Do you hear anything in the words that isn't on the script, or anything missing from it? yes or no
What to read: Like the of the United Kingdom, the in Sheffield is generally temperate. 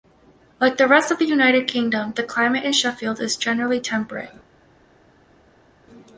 yes